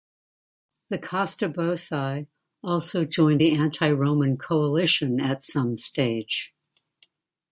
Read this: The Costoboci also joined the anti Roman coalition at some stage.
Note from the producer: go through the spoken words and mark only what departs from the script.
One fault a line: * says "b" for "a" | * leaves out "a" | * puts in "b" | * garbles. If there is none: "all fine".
all fine